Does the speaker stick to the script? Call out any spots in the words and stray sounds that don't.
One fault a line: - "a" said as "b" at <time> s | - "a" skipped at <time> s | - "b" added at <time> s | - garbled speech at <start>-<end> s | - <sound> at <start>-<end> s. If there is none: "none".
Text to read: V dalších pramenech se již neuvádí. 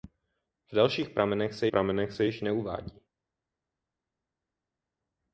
- "pramenech se" added at 1.7 s